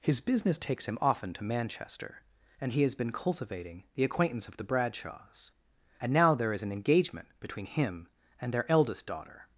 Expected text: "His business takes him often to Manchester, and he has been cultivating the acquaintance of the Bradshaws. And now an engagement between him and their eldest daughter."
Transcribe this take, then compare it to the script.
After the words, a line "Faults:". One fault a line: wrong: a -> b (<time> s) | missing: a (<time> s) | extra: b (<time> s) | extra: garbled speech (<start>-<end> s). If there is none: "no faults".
"His business takes him often to Manchester, and he has been cultivating the acquaintance of the Bradshaws. And now there is an engagement between him and their eldest daughter."
Faults:
extra: there is (6.3 s)